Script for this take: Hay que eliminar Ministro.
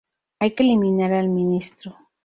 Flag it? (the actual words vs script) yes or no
yes